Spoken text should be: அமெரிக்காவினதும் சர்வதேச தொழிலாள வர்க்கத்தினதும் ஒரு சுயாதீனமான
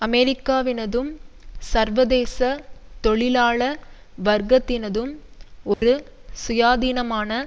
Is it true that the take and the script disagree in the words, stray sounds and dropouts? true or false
true